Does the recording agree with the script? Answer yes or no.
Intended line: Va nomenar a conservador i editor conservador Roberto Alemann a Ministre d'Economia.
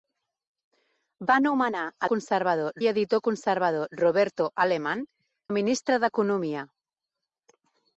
yes